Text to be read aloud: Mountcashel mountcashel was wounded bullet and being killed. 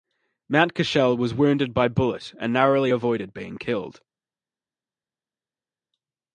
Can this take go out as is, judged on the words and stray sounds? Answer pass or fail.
fail